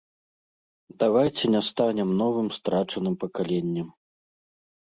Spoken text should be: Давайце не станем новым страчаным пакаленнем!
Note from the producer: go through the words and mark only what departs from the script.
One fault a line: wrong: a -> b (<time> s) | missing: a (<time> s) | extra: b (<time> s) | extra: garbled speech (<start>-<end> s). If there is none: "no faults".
no faults